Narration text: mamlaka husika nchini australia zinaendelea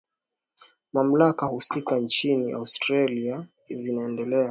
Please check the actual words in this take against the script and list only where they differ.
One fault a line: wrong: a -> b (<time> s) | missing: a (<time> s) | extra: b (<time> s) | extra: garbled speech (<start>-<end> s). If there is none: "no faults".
no faults